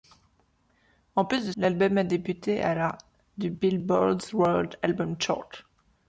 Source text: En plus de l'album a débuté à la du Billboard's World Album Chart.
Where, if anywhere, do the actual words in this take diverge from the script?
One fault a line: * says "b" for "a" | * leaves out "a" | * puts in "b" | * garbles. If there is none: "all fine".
all fine